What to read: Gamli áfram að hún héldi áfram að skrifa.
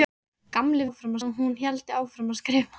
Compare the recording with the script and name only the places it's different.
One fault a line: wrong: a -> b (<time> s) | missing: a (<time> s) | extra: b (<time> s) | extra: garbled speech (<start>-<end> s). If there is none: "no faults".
no faults